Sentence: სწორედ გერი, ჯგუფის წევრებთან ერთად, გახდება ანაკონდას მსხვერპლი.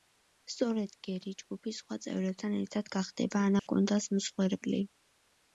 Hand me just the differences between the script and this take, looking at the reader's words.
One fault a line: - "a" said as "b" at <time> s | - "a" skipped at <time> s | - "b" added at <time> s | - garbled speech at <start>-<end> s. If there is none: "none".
- "სხვა" added at 1.8 s